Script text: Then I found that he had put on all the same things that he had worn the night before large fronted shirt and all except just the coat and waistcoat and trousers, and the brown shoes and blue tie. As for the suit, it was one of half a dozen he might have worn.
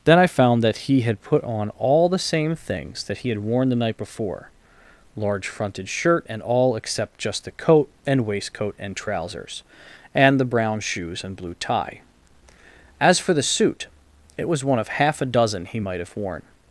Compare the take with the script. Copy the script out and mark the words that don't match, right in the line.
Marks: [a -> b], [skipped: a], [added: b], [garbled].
Then I found that he had put on all the same things that he had worn the night before large fronted shirt and all except just the coat and waistcoat and trousers, and the brown shoes and blue tie. As for the suit, it was one of half a dozen he might have worn.